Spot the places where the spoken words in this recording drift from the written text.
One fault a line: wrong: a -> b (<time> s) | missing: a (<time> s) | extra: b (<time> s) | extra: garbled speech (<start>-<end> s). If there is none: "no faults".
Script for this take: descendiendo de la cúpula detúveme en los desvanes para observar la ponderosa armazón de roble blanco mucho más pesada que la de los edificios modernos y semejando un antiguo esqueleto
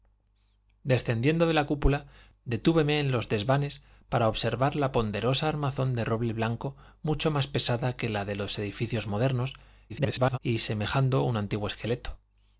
extra: garbled speech (9.9-10.4 s)